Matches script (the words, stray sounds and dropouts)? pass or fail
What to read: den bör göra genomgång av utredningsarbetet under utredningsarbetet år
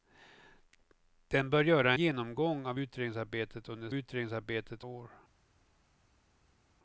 pass